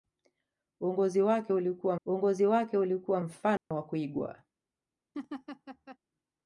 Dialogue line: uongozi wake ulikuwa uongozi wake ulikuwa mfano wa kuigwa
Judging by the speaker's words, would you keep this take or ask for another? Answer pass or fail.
pass